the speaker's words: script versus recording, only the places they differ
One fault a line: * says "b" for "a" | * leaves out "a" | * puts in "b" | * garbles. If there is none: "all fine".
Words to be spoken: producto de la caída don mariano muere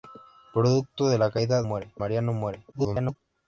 * says "muere" for "don"
* garbles